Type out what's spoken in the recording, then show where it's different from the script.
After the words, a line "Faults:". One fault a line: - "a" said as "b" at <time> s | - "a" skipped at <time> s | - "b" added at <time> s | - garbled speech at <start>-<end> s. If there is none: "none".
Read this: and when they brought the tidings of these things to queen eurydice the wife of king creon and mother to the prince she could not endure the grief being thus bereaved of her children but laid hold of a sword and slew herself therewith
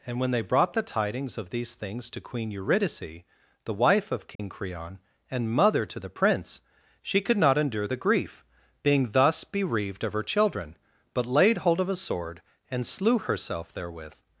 and when they brought the tidings of these things to queen eurydice the wife of king creon and mother to the prince she could not endure the grief being thus bereaved of her children but laid hold of a sword and slew herself therewith
Faults:
none